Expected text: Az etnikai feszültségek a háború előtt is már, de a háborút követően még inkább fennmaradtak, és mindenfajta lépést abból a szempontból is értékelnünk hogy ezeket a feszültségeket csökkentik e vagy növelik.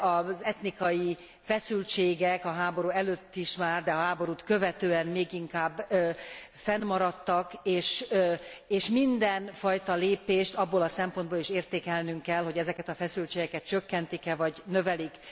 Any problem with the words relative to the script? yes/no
yes